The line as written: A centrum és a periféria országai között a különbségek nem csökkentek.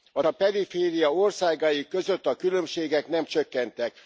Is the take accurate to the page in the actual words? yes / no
no